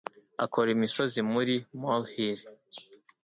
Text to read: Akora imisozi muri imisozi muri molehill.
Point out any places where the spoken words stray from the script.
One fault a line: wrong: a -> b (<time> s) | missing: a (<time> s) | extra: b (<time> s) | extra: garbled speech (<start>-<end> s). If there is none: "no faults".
missing: imisozi muri (1.6 s)